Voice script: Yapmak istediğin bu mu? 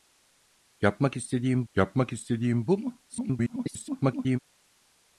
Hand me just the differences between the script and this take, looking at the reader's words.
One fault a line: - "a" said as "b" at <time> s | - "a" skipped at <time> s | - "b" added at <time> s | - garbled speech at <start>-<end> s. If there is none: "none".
- "yapmak istediğin" added at 1.7 s
- garbled speech at 3.1-4.4 s